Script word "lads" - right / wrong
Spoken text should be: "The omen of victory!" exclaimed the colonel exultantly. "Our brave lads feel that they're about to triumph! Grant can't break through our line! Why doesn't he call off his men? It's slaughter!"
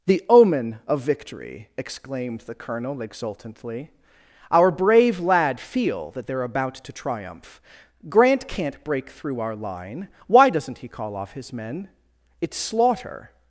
wrong